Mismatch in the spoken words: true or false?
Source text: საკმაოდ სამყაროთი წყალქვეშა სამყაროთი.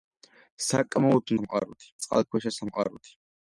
false